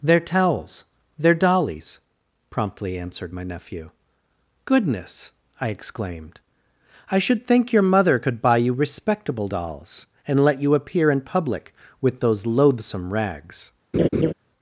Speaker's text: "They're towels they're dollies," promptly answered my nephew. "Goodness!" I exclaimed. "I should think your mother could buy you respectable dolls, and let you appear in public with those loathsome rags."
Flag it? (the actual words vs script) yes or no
no